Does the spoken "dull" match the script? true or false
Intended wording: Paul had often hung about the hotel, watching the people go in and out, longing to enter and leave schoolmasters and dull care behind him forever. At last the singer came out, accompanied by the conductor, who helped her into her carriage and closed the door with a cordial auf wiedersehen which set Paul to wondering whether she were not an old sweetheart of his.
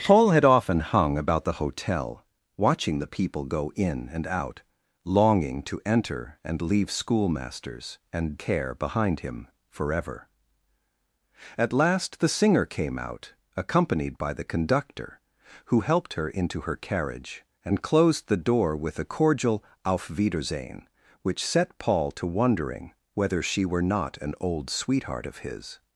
false